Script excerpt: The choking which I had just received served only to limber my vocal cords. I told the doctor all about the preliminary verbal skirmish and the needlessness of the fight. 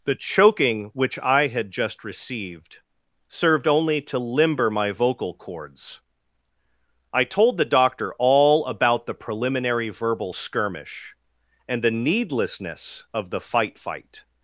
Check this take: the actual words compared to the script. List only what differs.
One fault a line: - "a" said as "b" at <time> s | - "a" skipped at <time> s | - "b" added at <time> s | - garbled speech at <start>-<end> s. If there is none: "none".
- "fight" added at 13.8 s